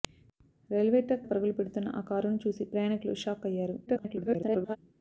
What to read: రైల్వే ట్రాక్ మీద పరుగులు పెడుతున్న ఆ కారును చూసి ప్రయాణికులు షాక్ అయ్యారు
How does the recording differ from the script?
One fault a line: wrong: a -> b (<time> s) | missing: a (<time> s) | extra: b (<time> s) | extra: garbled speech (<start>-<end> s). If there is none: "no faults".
missing: మీద (1.3 s)
extra: garbled speech (3.9-4.8 s)